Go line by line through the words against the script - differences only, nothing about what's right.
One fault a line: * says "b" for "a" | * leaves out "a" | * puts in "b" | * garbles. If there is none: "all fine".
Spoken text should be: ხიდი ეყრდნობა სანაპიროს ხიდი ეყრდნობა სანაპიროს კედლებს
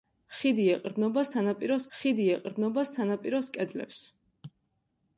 all fine